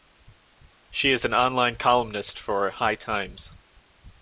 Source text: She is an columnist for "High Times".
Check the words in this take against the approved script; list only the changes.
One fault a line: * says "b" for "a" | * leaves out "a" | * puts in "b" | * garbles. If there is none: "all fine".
* puts in "online"